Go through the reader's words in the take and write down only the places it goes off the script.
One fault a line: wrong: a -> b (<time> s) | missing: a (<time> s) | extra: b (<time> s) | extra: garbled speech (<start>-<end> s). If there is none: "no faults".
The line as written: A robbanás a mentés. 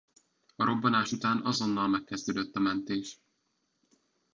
extra: után azonnal megkezdődött (1.1 s)